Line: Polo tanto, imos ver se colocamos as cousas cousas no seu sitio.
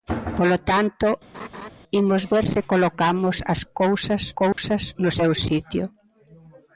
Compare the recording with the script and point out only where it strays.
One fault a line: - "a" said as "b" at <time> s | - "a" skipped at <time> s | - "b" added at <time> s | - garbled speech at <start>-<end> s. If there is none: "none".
none